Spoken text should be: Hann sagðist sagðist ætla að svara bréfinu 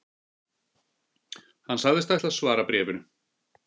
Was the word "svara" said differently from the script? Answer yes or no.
no